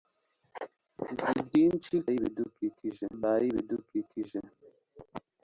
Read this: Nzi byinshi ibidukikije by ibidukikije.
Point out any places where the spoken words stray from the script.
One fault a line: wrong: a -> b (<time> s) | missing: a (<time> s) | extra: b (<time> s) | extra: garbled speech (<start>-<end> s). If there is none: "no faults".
no faults